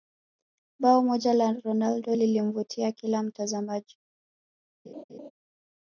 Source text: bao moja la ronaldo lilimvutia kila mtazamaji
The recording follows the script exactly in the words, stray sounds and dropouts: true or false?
false